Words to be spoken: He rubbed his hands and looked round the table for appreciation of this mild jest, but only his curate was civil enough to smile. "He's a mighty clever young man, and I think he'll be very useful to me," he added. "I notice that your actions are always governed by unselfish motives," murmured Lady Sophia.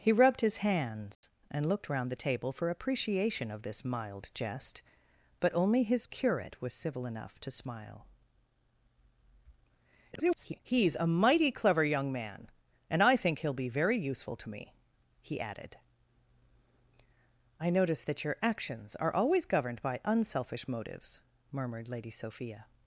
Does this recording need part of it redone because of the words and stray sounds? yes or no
yes